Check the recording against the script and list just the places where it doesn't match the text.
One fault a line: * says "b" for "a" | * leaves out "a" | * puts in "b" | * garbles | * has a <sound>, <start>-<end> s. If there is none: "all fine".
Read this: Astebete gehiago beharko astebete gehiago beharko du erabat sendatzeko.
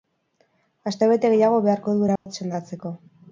* leaves out "astebete gehiago beharko"
* has a dropout, 2.2-2.3 s